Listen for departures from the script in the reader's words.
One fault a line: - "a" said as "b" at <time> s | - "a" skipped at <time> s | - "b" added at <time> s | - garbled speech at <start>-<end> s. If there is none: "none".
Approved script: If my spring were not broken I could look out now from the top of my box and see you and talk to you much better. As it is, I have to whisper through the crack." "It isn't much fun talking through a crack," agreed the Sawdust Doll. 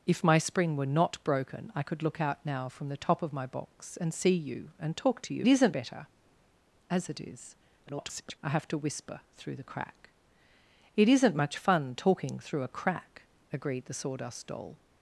- "much" said as "isn't" at 5.4 s
- garbled speech at 7.9-8.4 s